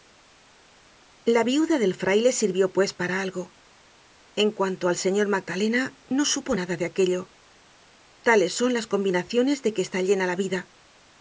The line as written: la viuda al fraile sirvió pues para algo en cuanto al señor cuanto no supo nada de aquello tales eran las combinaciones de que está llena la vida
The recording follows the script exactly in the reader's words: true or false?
false